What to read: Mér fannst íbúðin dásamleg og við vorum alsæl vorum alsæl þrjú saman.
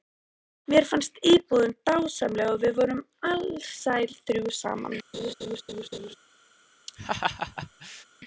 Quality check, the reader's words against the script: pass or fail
fail